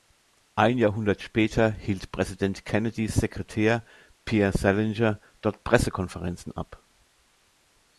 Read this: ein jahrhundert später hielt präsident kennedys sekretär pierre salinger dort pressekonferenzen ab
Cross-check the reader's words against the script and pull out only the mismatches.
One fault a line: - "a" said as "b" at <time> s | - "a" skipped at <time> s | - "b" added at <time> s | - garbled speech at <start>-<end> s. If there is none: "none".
none